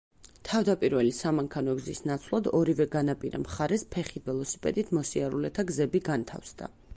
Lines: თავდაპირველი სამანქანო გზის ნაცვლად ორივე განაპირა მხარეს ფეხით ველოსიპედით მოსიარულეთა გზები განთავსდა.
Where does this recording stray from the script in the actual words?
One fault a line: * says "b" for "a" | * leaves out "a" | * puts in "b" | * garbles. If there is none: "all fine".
all fine